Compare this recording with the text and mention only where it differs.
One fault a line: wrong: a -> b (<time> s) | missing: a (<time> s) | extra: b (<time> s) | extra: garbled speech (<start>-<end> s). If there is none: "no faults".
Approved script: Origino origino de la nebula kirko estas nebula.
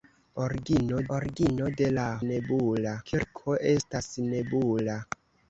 no faults